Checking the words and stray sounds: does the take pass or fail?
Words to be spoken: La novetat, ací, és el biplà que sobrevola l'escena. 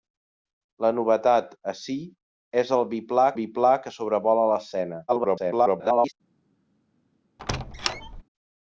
fail